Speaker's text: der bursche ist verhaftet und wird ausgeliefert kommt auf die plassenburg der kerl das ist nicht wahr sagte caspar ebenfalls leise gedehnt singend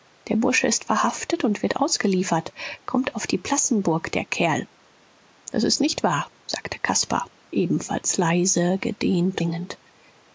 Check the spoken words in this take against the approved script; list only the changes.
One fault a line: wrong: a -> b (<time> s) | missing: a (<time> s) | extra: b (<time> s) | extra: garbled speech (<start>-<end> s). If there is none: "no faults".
no faults